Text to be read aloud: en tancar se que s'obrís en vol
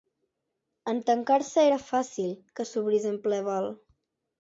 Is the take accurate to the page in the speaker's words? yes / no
no